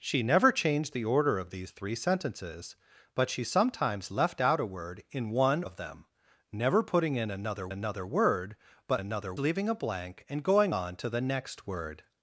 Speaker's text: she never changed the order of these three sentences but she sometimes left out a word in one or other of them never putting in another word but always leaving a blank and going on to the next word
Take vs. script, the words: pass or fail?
fail